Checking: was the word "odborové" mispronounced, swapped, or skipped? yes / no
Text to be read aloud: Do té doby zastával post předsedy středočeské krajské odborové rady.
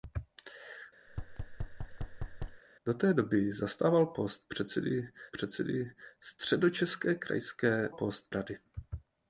yes